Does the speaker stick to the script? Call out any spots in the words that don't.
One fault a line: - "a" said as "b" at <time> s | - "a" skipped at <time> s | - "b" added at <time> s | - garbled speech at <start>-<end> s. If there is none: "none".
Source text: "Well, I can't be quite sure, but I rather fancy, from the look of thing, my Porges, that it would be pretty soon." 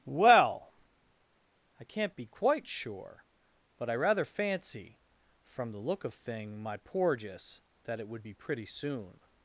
none